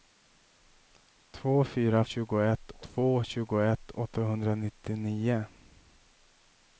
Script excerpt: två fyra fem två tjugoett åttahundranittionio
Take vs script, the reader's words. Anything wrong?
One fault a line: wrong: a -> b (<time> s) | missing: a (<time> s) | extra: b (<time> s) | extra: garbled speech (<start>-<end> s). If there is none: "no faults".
wrong: fem -> tjugoett (2.0 s)